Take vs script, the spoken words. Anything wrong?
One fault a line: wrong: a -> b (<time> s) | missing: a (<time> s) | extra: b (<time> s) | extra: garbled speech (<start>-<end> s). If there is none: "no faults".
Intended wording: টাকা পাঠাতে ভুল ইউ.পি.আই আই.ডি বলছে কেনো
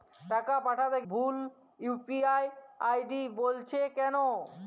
no faults